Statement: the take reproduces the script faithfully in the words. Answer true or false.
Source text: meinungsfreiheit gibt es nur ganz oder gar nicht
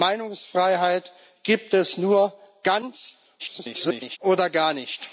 false